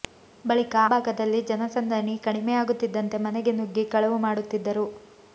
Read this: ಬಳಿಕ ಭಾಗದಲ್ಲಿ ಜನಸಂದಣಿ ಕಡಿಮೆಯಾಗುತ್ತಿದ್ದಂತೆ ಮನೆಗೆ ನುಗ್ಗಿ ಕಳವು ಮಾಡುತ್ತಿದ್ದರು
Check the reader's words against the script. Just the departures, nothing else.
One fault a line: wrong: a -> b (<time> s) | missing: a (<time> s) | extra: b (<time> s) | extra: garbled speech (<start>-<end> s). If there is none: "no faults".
no faults